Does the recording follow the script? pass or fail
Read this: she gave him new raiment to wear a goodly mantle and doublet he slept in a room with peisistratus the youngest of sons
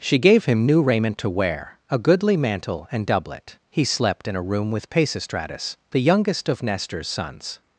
fail